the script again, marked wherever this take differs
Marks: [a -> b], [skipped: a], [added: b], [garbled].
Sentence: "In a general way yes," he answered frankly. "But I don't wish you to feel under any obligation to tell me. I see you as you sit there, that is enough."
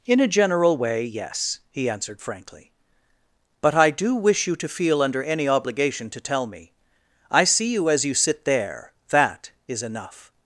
"In a general way yes," he answered frankly. "But I [don't -> do] wish you to feel under any obligation to tell me. I see you as you sit there, that is enough."